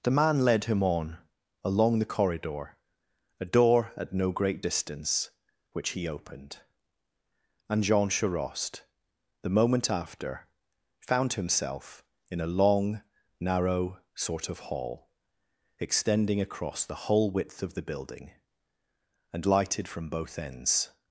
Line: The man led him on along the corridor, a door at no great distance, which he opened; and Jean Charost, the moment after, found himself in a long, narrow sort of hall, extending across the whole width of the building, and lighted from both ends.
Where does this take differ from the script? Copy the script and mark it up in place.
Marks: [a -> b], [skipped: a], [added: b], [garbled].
The man led him on along the corridor, a door at no great distance, which he opened; and Jean Charost, the moment after, found himself in a long, narrow sort of hall, extending across the whole width of the building, and lighted from both ends.